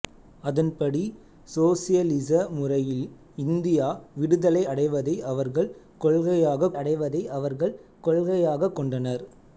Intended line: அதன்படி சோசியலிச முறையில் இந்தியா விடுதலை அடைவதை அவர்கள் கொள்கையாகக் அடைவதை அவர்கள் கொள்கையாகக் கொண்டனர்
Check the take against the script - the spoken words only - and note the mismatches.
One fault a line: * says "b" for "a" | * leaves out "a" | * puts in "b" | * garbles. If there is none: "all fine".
all fine